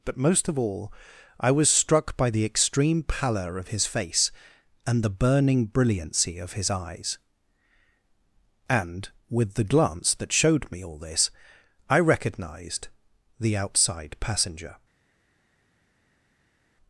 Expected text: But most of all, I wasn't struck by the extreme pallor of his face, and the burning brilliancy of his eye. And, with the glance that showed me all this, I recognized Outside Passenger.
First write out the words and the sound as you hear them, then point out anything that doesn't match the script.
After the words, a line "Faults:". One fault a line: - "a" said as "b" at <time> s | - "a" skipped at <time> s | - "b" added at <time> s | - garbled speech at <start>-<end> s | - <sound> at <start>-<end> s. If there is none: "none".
But most of all, I was struck by the extreme pallor of his face, and the burning brilliancy of his eyes. And, with the glance that showed me all this, I recognized the Outside Passenger.
Faults:
- "wasn't" said as "was" at 1.5 s
- "eye" said as "eyes" at 6.7 s
- "the" added at 13.4 s